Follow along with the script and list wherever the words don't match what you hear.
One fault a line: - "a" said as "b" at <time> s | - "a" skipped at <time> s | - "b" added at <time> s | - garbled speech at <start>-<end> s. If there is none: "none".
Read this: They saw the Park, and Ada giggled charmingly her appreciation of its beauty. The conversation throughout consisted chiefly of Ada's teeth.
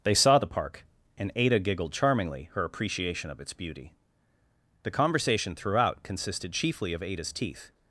none